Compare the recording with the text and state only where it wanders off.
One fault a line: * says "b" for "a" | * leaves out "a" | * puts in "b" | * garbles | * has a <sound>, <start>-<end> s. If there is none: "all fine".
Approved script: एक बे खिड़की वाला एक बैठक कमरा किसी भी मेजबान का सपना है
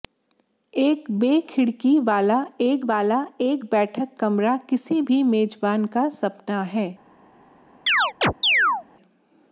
* puts in "वाला एक"
* has a chirp, 7.9-8.8 s